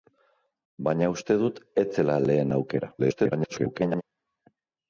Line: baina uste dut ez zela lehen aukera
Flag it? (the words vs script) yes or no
yes